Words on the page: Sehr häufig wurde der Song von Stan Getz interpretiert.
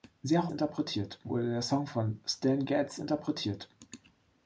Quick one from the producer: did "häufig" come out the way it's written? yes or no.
no